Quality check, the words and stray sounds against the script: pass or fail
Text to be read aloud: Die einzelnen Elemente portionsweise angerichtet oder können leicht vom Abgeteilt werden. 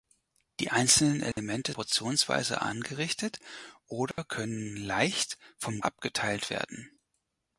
fail